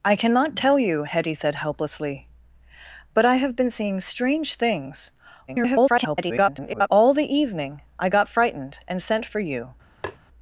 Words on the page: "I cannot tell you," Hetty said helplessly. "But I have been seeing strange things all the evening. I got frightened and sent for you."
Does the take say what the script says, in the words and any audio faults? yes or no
no